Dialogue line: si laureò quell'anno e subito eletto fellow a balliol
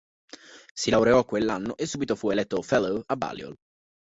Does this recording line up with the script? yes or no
no